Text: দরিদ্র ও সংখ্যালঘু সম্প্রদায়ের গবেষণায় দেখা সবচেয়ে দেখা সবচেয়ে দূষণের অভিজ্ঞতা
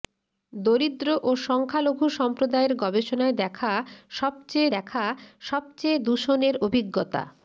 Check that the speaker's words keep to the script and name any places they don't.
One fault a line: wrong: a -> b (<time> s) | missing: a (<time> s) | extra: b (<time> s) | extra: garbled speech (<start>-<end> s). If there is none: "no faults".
no faults